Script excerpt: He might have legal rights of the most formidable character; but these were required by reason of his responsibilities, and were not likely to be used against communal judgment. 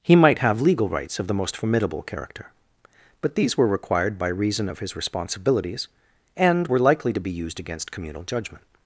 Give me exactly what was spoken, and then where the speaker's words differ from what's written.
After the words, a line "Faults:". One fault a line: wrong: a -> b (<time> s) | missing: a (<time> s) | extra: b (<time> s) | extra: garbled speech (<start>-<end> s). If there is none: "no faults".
He might have legal rights of the most formidable character; but these were required by reason of his responsibilities, and were likely to be used against communal judgment.
Faults:
missing: not (6.8 s)